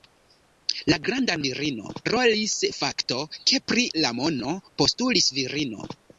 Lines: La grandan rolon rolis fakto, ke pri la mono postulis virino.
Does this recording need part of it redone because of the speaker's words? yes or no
yes